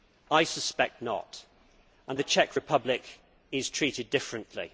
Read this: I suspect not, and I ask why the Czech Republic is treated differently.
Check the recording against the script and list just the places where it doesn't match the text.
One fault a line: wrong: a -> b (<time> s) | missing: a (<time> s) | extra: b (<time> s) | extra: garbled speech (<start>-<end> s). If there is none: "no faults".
missing: I ask why (2.2 s)